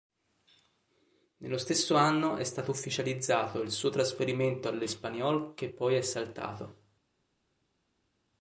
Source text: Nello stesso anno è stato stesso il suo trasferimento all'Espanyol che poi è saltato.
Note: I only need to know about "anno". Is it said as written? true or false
true